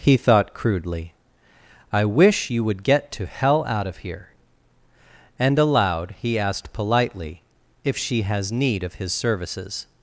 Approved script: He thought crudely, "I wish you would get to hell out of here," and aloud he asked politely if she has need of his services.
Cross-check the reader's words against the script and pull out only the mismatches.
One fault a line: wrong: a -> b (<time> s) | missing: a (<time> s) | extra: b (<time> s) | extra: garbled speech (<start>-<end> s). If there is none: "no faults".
no faults